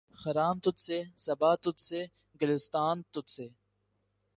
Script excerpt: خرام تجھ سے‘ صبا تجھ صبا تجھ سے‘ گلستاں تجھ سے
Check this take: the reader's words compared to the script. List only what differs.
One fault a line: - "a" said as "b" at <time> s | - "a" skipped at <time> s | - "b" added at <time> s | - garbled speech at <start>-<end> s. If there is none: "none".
- "صبا تجھ" skipped at 1.8 s